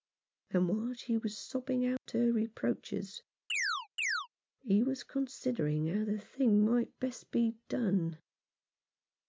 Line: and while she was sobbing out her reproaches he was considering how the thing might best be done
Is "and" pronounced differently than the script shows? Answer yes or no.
no